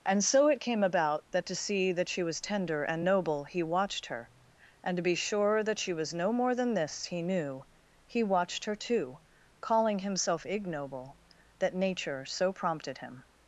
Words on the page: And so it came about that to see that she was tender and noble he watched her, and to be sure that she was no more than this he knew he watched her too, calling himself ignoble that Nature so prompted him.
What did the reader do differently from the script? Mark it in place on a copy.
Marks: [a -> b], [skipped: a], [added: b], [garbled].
And so it came about that to see that she was tender and noble he watched her, and to be sure that she was no more than this he knew he watched her too, calling himself ignoble that Nature so prompted him.